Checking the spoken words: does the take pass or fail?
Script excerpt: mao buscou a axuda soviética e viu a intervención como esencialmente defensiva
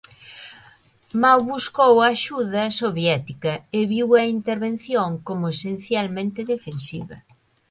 pass